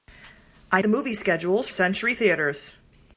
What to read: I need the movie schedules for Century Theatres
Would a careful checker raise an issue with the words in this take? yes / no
yes